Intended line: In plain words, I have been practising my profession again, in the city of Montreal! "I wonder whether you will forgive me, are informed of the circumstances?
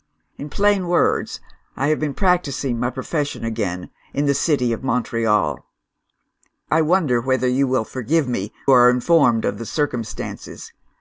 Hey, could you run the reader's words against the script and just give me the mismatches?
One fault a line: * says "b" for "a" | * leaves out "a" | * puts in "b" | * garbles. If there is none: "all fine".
all fine